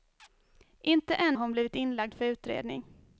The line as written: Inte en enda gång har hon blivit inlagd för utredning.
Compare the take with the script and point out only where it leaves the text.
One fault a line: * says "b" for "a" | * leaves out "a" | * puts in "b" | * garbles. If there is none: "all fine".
* leaves out "enda gång"